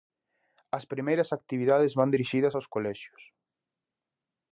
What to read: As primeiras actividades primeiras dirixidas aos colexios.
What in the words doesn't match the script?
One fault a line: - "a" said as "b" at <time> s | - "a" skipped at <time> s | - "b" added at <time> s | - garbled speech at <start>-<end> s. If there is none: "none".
- "primeiras" said as "van" at 2.0 s